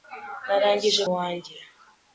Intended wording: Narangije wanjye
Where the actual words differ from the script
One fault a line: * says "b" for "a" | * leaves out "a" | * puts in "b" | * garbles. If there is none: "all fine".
all fine